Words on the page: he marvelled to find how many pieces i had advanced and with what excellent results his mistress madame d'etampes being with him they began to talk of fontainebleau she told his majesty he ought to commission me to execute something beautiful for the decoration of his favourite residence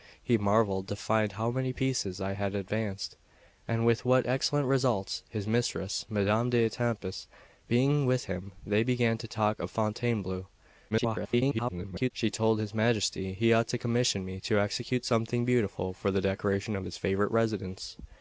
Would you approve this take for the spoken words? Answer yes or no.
no